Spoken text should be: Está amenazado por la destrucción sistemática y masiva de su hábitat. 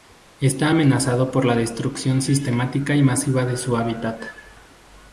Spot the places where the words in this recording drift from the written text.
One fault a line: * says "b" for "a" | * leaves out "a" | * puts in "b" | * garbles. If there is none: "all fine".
all fine